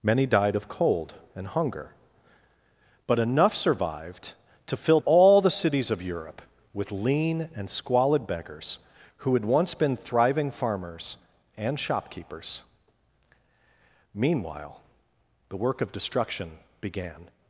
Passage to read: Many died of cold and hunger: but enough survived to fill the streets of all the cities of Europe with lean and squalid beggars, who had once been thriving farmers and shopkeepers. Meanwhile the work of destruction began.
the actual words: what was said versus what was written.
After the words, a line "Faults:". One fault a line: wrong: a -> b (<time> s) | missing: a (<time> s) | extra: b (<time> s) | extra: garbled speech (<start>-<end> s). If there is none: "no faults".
Many died of cold and hunger: but enough survived to fill all the cities of Europe with lean and squalid beggars, who had once been thriving farmers and shopkeepers. Meanwhile the work of destruction began.
Faults:
missing: the streets of (5.0 s)